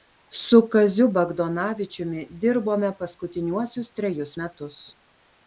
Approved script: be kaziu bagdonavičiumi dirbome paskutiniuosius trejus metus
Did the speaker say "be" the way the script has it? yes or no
no